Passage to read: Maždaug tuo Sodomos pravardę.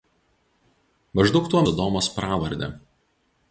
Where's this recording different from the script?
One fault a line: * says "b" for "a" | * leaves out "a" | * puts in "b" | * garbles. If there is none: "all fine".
all fine